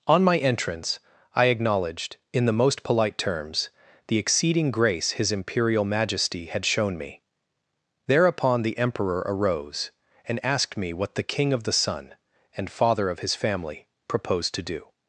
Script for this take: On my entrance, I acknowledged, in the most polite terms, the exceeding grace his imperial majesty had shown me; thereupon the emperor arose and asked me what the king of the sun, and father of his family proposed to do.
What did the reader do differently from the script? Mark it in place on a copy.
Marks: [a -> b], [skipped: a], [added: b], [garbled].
On my entrance, I acknowledged, in the most polite terms, the exceeding grace his imperial majesty had shown me; thereupon the emperor arose and asked me what the king of the sun, and father of his family proposed to do.